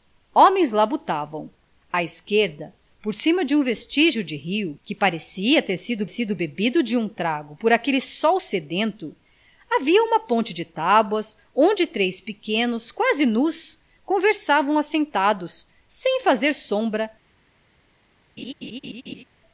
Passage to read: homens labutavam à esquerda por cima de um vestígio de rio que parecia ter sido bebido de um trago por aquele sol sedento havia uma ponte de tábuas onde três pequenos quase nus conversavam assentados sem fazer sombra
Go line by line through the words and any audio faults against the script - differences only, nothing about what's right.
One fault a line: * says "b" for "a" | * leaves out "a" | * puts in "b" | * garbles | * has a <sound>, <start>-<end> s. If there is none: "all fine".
* puts in "sido"
* has a laugh, 18.4-19.2 s